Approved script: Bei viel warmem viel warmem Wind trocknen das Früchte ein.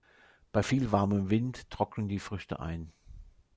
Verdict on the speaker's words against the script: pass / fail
fail